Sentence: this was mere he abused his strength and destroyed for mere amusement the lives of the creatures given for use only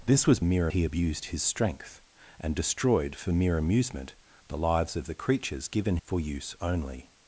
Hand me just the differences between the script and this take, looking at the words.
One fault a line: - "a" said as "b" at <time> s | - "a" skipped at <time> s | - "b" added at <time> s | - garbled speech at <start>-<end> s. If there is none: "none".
none